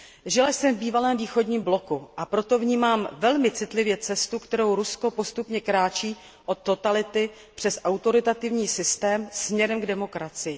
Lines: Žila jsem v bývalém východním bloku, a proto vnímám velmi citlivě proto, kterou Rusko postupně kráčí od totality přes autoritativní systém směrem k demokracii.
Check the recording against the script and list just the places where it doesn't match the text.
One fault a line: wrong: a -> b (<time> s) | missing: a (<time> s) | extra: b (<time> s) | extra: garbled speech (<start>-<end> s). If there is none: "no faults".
wrong: proto -> cestu (4.0 s)